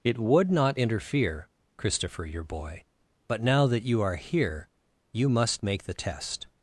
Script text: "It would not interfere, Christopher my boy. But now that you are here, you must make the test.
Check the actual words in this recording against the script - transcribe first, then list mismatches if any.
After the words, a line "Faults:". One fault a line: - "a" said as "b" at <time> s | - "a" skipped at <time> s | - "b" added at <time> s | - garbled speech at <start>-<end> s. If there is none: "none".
"It would not interfere, Christopher your boy. But now that you are here, you must make the test.
Faults:
- "my" said as "your" at 2.2 s